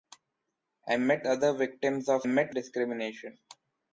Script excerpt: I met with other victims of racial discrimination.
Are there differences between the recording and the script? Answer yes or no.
yes